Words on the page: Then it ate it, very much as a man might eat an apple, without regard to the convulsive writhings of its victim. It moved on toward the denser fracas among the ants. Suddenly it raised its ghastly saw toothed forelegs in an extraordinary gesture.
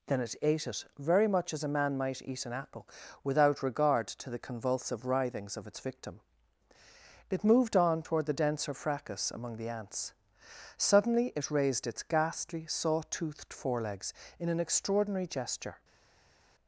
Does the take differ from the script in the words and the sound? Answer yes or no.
no